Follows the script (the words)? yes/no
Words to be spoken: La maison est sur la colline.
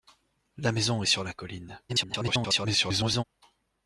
no